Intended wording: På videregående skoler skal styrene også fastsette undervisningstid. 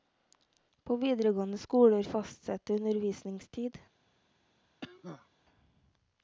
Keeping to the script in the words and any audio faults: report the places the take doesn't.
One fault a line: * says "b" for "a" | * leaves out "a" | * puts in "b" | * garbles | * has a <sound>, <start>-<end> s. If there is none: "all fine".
* leaves out "skal styrene også"
* has a cough, 4.8-5.3 s